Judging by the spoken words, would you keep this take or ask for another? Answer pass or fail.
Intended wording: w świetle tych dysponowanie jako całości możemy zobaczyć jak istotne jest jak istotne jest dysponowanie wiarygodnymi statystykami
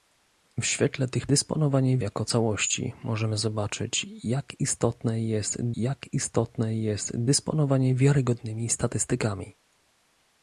pass